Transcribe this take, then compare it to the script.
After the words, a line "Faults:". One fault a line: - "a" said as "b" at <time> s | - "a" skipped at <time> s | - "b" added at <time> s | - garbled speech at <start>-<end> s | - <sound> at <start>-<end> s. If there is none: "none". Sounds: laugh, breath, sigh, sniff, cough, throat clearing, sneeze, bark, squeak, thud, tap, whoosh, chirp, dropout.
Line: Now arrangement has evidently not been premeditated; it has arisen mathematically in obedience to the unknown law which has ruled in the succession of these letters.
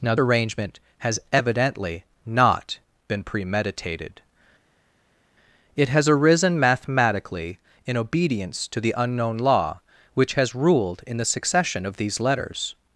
Now arrangement has evidently not been premeditated; it has arisen mathematically in obedience to the unknown law which has ruled in the succession of these letters.
Faults:
none